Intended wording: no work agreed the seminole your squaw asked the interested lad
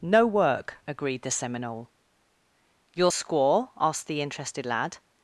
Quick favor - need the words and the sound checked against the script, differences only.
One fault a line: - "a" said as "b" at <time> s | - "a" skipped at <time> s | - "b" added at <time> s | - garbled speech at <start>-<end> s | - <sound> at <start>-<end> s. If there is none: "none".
none